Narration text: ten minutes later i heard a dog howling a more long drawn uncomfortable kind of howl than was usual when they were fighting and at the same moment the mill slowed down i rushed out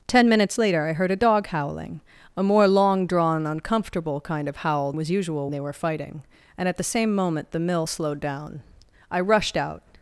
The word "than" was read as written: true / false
false